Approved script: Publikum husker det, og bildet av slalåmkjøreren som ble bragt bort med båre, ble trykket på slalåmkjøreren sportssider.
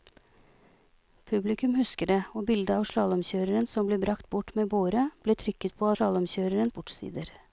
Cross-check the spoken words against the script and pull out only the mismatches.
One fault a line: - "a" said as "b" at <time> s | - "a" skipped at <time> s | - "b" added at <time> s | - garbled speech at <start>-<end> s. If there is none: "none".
none